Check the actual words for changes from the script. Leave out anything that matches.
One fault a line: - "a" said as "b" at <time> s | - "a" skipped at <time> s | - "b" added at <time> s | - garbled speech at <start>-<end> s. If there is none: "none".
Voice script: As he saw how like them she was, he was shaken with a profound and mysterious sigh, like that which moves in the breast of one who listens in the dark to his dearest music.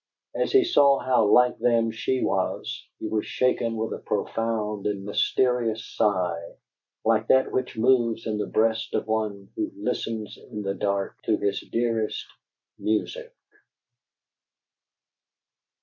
none